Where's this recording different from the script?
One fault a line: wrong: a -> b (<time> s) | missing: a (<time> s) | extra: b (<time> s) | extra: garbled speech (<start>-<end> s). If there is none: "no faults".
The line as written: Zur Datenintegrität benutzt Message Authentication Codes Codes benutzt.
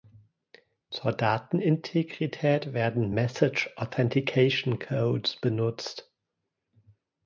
wrong: benutzt -> werden (2.7 s)
missing: Codes (5.3 s)